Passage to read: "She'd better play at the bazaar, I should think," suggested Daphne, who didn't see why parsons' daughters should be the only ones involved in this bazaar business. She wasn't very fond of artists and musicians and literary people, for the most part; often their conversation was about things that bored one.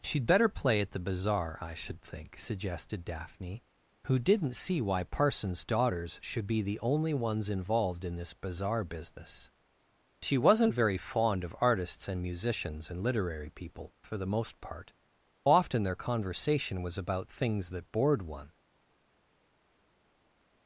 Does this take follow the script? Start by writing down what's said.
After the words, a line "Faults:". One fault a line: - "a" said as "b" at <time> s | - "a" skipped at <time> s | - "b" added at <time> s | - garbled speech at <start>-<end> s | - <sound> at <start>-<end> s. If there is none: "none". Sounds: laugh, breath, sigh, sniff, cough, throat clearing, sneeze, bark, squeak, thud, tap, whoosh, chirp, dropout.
"She'd better play at the bazaar, I should think," suggested Daphne, who didn't see why parsons' daughters should be the only ones involved in this bazaar business. She wasn't very fond of artists and musicians and literary people, for the most part; often their conversation was about things that bored one.
Faults:
none